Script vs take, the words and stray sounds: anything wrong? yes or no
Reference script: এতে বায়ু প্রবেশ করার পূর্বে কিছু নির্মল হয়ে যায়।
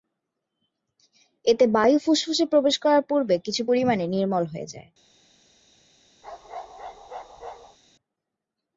yes